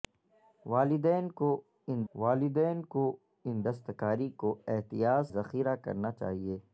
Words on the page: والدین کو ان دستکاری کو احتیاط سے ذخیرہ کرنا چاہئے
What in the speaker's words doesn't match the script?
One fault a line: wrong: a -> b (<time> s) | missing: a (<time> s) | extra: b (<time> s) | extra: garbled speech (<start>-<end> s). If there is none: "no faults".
extra: والدین کو ان (2.1 s)
missing: سے (5.3 s)